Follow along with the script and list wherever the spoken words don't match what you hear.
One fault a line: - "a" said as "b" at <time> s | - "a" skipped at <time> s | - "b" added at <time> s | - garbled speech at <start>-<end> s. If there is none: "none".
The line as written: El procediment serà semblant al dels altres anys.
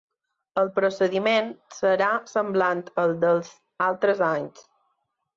none